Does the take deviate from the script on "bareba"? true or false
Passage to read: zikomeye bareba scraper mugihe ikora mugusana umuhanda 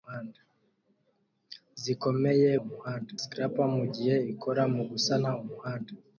true